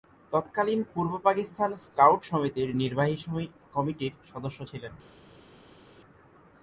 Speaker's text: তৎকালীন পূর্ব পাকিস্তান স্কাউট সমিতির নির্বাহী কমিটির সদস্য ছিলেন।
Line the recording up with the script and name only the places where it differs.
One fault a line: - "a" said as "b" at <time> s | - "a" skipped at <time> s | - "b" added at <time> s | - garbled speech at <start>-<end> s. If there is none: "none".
none